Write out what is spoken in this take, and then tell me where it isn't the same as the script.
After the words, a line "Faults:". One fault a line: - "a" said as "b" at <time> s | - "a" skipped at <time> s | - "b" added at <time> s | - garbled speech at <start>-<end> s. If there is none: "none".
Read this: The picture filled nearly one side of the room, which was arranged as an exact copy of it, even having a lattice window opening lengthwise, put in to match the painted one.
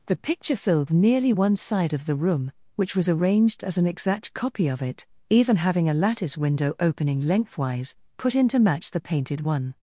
The picture filled nearly one side of the room, which was arranged as an exact copy of it, even having a lattice window opening lengthwise, put in to match the painted one.
Faults:
none